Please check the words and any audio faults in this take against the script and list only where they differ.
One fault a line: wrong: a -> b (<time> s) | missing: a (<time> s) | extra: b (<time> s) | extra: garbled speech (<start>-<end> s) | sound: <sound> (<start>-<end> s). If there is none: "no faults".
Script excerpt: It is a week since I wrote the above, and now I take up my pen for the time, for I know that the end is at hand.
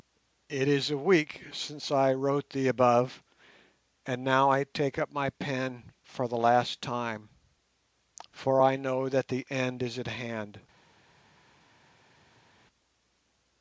extra: last (6.4 s)